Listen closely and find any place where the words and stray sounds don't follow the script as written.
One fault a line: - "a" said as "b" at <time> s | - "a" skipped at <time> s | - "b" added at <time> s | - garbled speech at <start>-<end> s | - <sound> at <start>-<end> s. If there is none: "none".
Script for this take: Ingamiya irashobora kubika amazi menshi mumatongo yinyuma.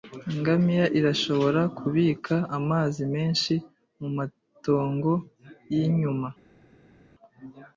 none